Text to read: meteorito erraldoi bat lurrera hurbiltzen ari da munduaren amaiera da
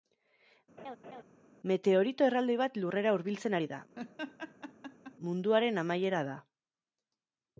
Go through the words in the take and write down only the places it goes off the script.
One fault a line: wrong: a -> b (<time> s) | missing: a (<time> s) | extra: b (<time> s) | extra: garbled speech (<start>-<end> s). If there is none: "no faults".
no faults